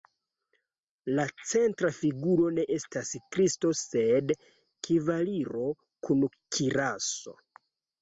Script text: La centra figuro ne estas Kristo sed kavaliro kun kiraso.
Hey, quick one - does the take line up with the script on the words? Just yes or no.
yes